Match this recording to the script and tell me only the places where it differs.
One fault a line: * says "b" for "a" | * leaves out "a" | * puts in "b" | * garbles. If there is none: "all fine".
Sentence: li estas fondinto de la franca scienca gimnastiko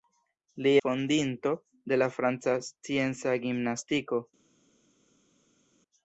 * leaves out "estas"